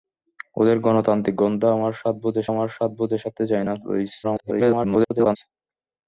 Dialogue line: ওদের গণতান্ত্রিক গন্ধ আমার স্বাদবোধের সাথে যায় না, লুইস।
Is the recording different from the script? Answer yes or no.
yes